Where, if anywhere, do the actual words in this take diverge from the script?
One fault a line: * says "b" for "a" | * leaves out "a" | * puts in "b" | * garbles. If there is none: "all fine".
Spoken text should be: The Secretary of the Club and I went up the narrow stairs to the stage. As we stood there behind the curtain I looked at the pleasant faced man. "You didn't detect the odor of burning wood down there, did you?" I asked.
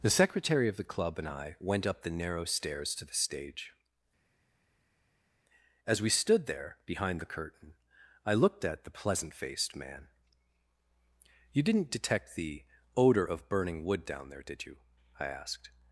all fine